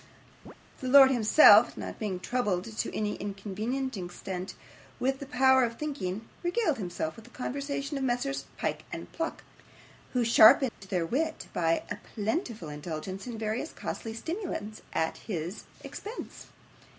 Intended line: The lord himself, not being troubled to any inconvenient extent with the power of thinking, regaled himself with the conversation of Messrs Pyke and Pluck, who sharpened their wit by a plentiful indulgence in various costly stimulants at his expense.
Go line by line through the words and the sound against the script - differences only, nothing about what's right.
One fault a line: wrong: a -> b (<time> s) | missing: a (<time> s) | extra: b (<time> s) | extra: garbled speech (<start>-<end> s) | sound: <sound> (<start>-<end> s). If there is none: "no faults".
sound: chirp (0.5-0.5 s)
sound: dropout (10.7-10.8 s)